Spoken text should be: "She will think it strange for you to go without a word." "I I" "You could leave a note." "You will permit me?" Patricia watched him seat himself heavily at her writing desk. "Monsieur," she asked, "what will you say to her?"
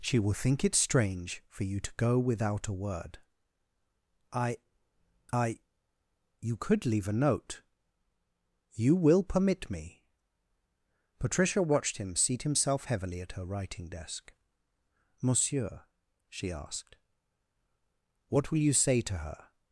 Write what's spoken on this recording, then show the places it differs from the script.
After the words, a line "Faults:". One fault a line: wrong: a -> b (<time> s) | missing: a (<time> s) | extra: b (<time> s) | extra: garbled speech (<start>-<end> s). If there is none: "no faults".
"She will think it strange for you to go without a word." "I I" "You could leave a note." "You will permit me?" Patricia watched him seat himself heavily at her writing desk. "Monsieur," she asked, "what will you say to her?"
Faults:
no faults